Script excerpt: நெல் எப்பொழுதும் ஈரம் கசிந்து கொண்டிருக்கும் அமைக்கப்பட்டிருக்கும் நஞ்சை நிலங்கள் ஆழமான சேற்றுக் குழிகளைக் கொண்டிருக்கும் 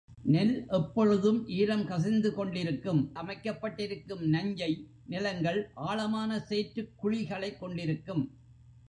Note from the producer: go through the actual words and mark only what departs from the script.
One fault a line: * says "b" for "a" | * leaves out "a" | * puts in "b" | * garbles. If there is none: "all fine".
all fine